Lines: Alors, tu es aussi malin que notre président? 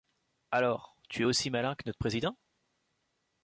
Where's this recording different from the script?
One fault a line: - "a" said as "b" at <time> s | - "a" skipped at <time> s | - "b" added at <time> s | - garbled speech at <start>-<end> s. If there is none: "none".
none